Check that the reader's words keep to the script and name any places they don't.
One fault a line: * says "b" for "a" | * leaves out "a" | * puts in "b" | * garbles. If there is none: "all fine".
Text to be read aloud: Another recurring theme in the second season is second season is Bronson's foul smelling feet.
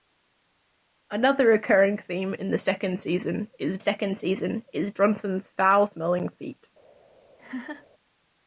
all fine